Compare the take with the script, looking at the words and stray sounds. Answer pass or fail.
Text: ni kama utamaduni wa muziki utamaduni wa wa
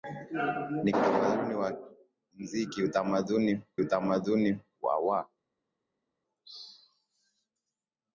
fail